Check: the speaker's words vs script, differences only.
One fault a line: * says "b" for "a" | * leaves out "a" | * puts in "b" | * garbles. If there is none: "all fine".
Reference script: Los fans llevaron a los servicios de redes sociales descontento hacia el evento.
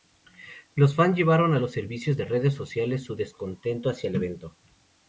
* puts in "su"